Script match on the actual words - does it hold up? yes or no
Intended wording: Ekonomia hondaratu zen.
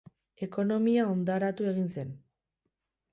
no